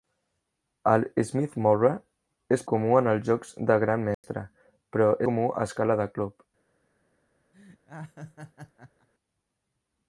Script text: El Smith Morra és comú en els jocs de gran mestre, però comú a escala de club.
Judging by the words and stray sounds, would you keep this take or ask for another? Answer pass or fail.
fail